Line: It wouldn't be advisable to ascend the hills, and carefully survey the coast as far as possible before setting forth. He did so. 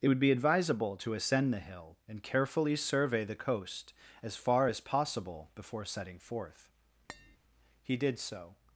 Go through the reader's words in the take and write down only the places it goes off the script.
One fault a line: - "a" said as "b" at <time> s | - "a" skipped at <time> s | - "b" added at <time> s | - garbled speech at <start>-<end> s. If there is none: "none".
- "wouldn't" said as "would" at 0.1 s
- "hills" said as "hill" at 1.6 s